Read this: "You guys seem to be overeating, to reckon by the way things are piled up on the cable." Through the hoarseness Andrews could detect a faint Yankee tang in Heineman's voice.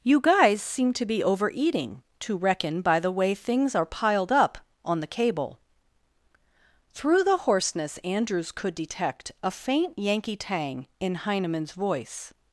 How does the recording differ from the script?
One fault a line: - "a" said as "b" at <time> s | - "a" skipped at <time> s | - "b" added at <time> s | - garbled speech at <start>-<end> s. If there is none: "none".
none